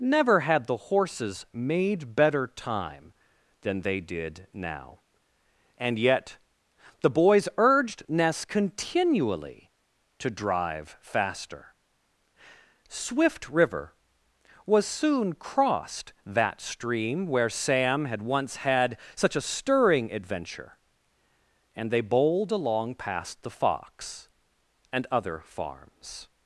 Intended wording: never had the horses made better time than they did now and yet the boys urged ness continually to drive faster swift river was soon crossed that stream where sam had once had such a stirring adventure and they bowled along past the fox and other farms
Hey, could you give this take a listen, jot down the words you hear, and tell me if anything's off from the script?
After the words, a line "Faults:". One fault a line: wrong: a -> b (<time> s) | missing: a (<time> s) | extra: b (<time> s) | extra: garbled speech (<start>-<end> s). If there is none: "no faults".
never had the horses made better time than they did now and yet the boys urged ness continually to drive faster swift river was soon crossed that stream where sam had once had such a stirring adventure and they bowled along past the fox and other farms
Faults:
no faults